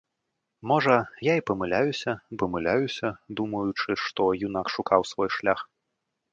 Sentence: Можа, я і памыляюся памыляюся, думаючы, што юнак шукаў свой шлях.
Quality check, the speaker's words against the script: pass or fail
pass